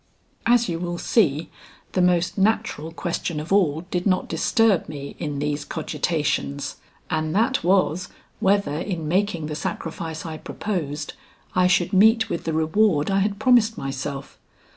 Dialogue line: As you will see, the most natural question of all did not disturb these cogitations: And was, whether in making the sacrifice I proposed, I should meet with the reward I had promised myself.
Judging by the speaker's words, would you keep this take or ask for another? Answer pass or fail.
fail